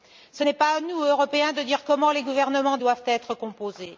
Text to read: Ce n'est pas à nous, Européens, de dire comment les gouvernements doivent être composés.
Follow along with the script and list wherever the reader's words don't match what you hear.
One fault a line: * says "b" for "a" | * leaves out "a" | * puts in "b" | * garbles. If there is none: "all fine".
all fine